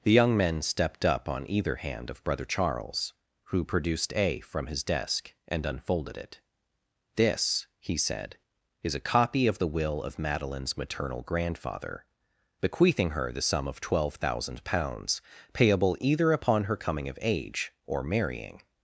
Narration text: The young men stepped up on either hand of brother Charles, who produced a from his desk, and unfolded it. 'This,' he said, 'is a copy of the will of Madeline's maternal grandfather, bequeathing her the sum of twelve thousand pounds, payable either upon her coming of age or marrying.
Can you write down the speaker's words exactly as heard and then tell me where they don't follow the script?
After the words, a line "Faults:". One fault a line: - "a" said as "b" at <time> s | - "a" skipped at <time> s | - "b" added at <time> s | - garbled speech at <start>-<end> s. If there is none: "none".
The young men stepped up on either hand of brother Charles, who produced a from his desk, and unfolded it. 'This,' he said, 'is a copy of the will of Madeline's maternal grandfather, bequeathing her the sum of twelve thousand pounds, payable either upon her coming of age or marrying.
Faults:
none